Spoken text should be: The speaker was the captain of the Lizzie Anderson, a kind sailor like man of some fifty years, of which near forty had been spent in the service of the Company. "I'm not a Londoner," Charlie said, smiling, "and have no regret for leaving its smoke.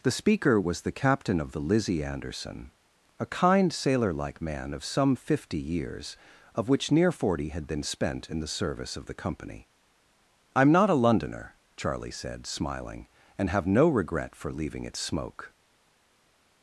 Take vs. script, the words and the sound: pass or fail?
pass